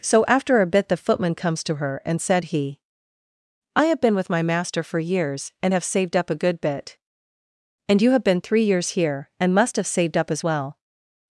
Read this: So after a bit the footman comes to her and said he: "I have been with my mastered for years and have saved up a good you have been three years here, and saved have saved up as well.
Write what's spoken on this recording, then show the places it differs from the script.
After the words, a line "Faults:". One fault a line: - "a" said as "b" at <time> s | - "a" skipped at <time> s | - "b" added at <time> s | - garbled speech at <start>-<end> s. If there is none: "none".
So after a bit the footman comes to her and said he: "I have been with my master for years and have saved up a good bit, and you have been three years here, and must have saved up as well.
Faults:
- "mastered" said as "master" at 4.4 s
- "bit and" added at 6.6 s
- "saved" said as "must" at 9.5 s